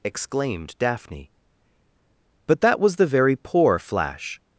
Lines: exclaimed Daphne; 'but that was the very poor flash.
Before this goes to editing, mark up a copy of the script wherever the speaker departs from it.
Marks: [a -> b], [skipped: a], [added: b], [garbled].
exclaimed Daphne; 'but that was the very poor flash.